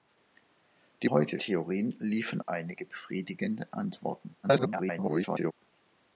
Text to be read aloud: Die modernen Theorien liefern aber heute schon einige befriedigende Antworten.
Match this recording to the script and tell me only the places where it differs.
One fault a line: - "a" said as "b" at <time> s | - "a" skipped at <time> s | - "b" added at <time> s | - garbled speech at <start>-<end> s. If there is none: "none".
- "modernen" said as "heute" at 1.1 s
- "aber heute schon" skipped at 2.4 s
- garbled speech at 4.4-5.5 s